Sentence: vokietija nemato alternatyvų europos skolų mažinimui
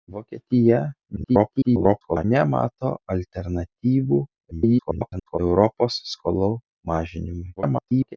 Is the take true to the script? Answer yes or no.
no